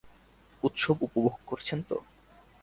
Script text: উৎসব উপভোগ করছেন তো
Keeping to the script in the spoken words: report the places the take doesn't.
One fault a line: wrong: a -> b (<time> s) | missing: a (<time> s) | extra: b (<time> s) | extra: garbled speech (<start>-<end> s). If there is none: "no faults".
no faults